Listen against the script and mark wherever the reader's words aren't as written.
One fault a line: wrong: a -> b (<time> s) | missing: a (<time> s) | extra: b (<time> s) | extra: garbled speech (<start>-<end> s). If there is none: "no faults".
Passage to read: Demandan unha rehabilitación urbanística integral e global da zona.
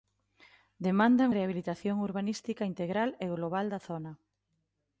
missing: unha (1.3 s)